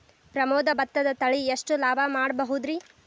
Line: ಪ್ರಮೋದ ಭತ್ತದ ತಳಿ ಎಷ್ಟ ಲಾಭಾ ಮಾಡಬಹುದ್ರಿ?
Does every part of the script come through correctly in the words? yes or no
yes